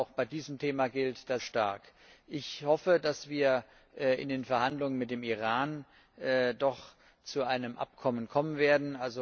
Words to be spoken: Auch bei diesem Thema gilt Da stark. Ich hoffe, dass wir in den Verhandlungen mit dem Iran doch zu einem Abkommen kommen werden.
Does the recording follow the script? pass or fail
pass